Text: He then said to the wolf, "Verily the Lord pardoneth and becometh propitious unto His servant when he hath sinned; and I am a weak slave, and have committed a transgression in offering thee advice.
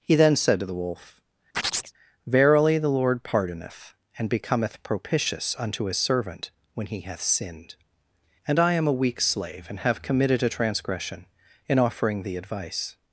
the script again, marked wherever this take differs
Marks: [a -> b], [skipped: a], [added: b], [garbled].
He then said to the wolf, "Verily the Lord pardoneth and becometh propitious unto His servant when he hath sinned; and I am a weak slave, and have committed a transgression in offering thee advice.